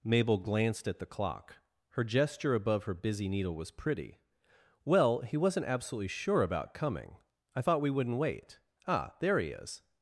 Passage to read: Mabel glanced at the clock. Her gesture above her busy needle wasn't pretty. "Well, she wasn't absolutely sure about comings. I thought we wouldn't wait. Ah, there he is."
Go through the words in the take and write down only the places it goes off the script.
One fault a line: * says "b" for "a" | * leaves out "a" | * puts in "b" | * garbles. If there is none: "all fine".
* says "was" for "wasn't"
* says "he" for "she"
* says "coming" for "comings"